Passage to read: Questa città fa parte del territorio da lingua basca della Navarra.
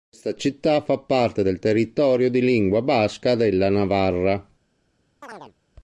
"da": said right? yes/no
no